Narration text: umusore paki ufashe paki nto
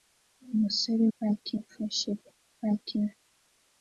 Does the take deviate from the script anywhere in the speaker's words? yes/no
no